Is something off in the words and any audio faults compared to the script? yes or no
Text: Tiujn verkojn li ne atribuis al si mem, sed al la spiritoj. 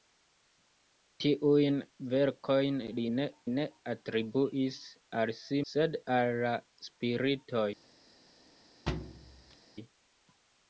yes